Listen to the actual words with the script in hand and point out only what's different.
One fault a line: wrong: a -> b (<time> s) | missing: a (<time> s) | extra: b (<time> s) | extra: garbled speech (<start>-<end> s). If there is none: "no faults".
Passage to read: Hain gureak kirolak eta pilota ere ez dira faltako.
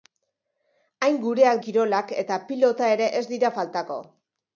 no faults